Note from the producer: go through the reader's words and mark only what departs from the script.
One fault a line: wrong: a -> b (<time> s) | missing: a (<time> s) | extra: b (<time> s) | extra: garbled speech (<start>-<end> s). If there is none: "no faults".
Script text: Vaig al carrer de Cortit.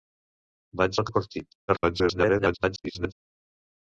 missing: carrer (1.1 s)
extra: garbled speech (1.7-3.1 s)